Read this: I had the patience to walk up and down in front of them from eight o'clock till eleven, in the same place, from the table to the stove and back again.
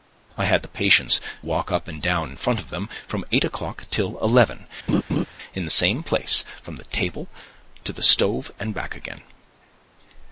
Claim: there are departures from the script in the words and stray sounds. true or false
true